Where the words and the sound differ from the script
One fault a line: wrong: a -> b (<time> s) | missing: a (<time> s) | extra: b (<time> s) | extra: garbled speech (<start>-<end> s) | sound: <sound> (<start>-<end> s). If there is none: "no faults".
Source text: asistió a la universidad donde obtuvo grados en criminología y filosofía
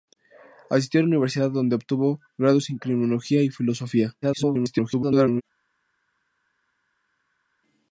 extra: garbled speech (4.2-5.4 s)